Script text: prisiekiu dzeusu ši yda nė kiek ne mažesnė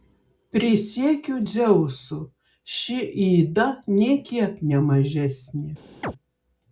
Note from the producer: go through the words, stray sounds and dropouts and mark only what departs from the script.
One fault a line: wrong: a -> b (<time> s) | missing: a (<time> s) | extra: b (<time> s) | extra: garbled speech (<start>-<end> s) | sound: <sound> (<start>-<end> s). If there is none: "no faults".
sound: chirp (6.0-6.1 s)